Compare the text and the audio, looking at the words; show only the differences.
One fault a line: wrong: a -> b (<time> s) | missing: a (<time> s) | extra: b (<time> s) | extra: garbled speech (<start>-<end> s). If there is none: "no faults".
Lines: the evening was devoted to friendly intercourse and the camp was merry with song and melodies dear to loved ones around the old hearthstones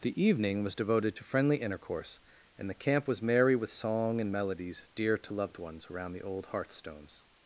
no faults